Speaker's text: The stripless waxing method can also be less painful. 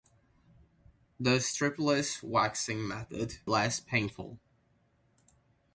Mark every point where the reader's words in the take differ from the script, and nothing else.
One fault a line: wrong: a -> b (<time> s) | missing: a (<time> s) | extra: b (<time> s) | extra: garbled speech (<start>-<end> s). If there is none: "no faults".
missing: can also be (3.4 s)